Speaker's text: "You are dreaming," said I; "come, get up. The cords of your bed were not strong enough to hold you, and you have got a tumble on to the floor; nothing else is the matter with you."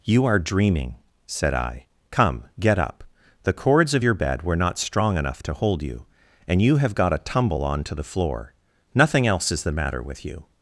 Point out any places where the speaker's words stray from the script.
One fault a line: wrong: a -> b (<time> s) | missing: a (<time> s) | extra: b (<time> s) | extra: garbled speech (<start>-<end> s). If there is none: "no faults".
no faults